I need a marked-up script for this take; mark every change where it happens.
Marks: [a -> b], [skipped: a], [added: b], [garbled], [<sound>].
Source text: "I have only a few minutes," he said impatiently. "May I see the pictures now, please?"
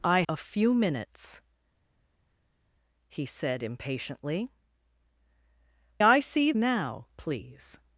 "I [skipped: have only] a few minutes," he said impatiently. [skipped: "May] I see [skipped: the pictures] now, please?"